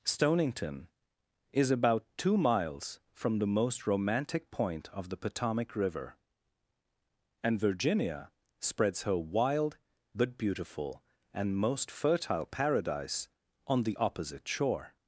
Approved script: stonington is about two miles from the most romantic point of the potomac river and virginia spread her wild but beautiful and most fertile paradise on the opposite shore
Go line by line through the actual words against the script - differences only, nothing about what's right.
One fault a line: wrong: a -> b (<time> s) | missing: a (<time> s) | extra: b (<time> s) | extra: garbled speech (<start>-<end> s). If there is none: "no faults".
wrong: spread -> spreads (8.6 s)